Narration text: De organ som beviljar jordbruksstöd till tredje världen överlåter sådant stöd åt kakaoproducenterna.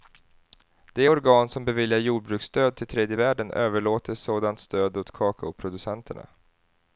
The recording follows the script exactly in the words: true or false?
true